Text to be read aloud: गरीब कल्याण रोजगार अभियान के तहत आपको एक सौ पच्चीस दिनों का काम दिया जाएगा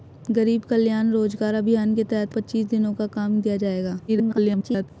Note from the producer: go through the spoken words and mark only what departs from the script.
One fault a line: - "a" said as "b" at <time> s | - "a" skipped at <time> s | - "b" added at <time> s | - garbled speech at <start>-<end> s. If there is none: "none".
- "आपको एक सौ" skipped at 2.4 s
- garbled speech at 4.1-4.9 s